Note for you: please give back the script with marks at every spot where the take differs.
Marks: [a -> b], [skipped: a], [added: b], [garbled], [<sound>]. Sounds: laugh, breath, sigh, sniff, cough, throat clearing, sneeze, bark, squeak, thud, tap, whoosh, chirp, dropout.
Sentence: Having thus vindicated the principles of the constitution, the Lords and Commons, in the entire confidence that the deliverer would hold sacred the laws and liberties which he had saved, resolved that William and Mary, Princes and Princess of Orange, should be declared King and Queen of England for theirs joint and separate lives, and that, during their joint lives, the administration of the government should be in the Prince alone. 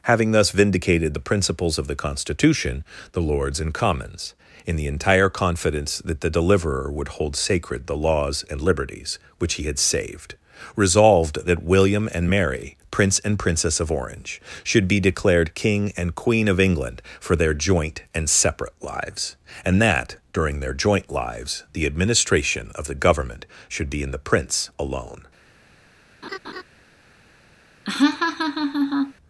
Having thus vindicated the principles of the constitution, the Lords and Commons, in the entire confidence that the deliverer would hold sacred the laws and liberties which he had saved, resolved that William and Mary, [Princes -> Prince] and Princess of Orange, should be declared King and Queen of England for [theirs -> their] joint and separate lives, and that, during their joint lives, the administration of the government should be in the Prince alone. [laugh] [laugh]